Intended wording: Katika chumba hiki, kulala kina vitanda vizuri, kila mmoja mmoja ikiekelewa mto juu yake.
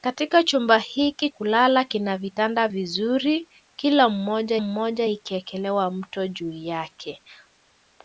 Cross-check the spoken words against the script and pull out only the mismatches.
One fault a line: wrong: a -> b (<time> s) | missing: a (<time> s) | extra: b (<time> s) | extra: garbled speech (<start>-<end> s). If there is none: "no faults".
no faults